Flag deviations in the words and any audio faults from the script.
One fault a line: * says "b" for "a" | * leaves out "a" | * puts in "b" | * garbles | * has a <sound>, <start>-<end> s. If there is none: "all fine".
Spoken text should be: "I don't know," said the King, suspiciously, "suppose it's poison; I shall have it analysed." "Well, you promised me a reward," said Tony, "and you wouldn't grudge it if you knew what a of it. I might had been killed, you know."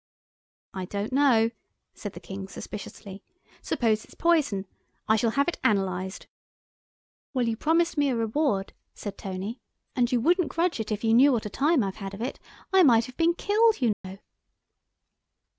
* puts in "time I've had"
* says "have" for "had"
* has a dropout, 13.9-14.0 s